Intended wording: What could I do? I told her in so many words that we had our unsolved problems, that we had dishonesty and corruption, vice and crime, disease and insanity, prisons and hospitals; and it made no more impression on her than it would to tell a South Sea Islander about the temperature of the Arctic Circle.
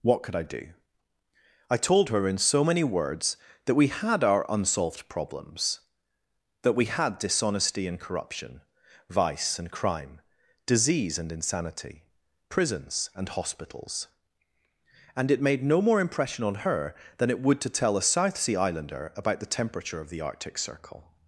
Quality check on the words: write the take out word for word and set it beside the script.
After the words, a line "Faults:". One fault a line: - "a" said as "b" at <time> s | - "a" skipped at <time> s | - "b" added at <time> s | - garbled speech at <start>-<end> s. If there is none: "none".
What could I do? I told her in so many words that we had our unsolved problems, that we had dishonesty and corruption, vice and crime, disease and insanity, prisons and hospitals; and it made no more impression on her than it would to tell a South Sea Islander about the temperature of the Arctic Circle.
Faults:
none